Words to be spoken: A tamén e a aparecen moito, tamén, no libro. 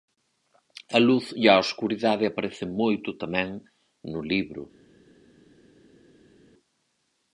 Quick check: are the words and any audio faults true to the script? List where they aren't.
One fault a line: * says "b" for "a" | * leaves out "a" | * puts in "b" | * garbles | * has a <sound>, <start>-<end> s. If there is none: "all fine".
* says "luz" for "tamén"
* puts in "escuridade"